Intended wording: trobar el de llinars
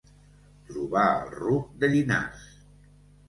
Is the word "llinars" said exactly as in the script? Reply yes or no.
yes